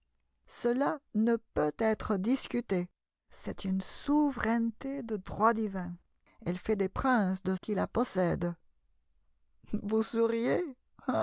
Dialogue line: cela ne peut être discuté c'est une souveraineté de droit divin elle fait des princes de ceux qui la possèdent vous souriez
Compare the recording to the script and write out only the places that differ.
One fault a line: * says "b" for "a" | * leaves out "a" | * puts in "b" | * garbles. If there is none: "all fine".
* leaves out "ceux"